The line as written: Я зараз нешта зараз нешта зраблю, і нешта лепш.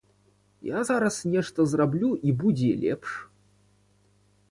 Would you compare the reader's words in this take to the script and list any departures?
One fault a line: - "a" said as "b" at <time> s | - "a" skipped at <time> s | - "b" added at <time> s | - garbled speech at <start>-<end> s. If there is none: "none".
- "зараз нешта" skipped at 1.7 s
- "нешта" said as "будзе" at 2.3 s